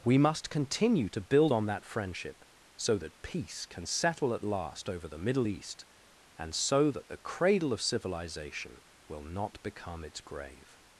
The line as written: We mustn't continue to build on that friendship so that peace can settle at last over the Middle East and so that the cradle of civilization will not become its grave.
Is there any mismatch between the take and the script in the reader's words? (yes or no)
yes